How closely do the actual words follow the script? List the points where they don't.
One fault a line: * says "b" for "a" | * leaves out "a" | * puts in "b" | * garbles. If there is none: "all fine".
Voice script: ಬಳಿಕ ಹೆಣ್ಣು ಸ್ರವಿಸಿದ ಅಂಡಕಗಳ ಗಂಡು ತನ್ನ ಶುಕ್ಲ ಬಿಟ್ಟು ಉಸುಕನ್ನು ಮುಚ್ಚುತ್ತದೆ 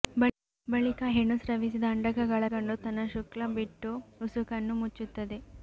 all fine